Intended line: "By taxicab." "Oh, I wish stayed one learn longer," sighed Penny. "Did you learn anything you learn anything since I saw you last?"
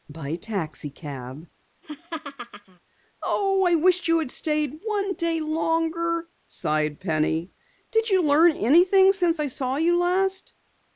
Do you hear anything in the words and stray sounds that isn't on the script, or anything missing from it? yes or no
yes